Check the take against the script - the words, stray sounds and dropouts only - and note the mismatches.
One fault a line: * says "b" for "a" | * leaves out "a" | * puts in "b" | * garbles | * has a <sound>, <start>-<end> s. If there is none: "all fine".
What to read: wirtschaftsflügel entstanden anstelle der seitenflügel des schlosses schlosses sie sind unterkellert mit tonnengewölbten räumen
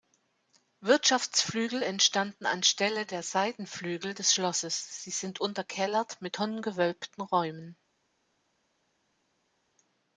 * leaves out "schlosses"